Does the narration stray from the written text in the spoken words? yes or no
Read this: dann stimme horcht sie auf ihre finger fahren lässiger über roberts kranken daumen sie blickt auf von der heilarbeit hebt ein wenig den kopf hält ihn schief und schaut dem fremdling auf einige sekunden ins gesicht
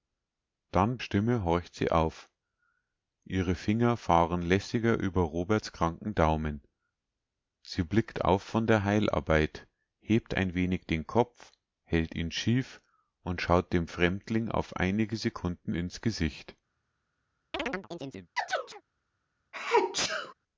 no